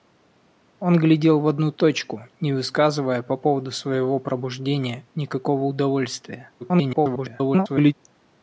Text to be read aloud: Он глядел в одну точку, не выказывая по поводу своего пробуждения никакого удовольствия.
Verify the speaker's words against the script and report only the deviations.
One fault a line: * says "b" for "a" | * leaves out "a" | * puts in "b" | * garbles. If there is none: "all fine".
* garbles